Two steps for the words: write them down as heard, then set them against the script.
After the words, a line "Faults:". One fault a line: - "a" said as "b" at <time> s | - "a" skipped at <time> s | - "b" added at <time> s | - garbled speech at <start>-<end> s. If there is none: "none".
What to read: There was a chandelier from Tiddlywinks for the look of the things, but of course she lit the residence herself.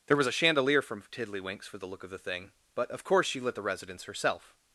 There was a chandelier from Tiddlywinks for the look of the thing, but of course she lit the residence herself.
Faults:
- "things" said as "thing" at 2.2 s